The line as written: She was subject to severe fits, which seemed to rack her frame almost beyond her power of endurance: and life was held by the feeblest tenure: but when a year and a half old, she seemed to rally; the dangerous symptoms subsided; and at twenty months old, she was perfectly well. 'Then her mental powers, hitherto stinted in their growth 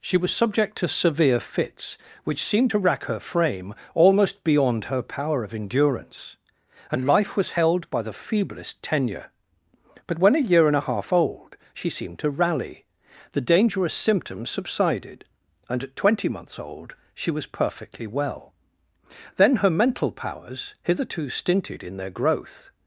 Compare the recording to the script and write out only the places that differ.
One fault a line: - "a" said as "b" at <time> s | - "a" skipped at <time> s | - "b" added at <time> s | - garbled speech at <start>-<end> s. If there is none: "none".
none